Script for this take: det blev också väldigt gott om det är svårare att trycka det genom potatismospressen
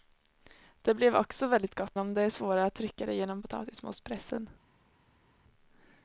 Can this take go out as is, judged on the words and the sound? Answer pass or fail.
pass